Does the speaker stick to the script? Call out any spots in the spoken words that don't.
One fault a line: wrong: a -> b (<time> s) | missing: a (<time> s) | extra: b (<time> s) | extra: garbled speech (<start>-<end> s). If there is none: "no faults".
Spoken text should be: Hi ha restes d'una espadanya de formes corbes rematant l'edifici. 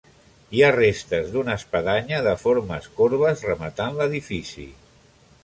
no faults